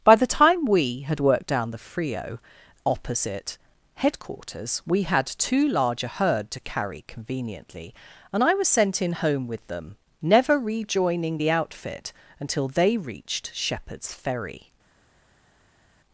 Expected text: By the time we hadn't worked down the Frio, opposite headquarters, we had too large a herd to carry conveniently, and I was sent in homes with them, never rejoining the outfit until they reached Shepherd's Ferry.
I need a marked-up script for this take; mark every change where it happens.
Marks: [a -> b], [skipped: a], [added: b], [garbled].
By the time we [hadn't -> had] worked down the Frio, opposite headquarters, we had too large a herd to carry conveniently, and I was sent in [homes -> home] with them, never rejoining the outfit until they reached Shepherd's Ferry.